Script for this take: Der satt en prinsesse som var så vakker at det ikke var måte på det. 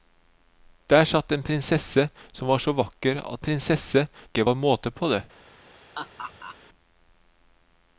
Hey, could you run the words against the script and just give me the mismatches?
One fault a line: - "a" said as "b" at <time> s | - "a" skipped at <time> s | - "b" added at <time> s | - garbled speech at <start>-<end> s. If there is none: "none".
- "det" said as "prinsesse" at 3.4 s